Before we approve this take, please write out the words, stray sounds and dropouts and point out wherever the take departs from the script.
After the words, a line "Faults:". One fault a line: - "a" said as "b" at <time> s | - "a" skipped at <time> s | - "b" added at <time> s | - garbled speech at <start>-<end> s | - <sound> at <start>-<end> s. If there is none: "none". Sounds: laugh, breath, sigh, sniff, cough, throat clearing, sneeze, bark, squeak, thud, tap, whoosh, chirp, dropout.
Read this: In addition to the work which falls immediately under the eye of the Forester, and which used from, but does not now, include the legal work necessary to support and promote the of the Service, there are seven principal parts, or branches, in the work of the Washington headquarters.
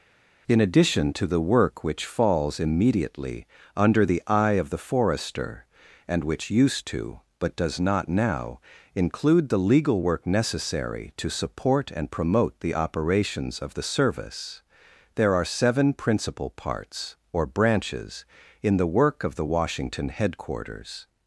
In addition to the work which falls immediately under the eye of the Forester, and which used to, but does not now, include the legal work necessary to support and promote the operations of the Service, there are seven principal parts, or branches, in the work of the Washington headquarters.
Faults:
- "from" said as "to" at 6.9 s
- "operations" added at 12.7 s